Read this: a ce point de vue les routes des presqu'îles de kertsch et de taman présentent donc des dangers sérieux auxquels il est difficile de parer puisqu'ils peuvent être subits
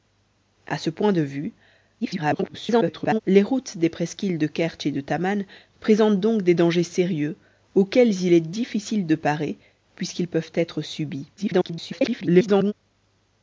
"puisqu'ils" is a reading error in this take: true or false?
false